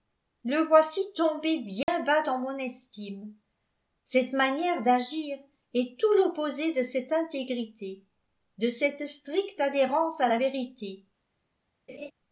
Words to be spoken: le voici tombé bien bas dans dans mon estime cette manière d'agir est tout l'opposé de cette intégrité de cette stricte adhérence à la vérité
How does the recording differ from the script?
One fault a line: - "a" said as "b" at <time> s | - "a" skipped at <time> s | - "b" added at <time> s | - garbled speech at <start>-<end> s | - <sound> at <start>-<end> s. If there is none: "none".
- dropout at 1.8-1.9 s
- "dans" skipped at 2.4 s
- laugh at 11.9-12.1 s